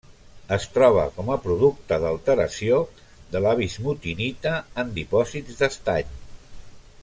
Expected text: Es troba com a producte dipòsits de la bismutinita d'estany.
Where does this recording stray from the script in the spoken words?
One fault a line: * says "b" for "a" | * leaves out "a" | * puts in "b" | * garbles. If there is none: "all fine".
* says "d'alteració" for "dipòsits"
* puts in "en dipòsits"